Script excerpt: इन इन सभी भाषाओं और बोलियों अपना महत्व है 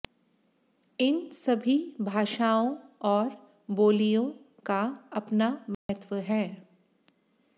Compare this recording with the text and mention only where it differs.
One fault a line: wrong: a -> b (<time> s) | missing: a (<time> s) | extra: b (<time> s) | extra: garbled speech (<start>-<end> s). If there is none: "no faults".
missing: इन (1.2 s)
extra: का (4.7 s)